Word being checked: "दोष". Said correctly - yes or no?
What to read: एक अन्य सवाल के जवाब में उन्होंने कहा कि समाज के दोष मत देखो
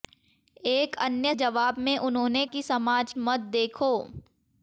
no